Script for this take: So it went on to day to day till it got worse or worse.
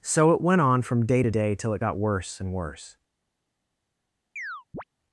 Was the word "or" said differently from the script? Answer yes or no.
yes